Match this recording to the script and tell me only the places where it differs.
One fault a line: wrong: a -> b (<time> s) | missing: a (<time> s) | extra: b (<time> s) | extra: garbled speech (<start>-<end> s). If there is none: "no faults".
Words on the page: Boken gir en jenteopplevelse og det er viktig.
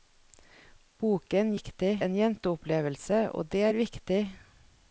wrong: gir -> viktig (1.6 s)